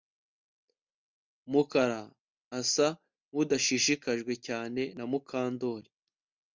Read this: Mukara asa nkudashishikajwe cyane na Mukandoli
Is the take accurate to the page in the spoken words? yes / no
yes